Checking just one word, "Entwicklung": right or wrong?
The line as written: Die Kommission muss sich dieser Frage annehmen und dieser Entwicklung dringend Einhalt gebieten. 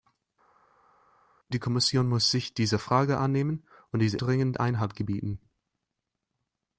wrong